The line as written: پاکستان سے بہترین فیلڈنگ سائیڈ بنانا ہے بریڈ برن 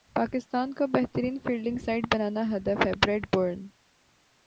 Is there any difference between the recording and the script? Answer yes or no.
yes